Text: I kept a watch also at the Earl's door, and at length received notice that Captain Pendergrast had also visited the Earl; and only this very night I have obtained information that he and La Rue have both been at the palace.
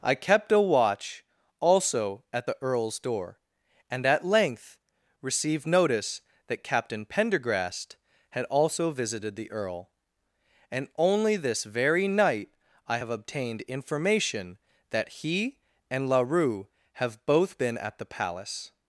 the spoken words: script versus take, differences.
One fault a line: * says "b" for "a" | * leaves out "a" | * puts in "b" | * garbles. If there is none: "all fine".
all fine